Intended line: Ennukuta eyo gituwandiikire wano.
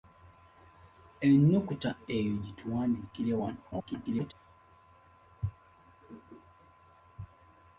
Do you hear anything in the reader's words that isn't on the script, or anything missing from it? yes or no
yes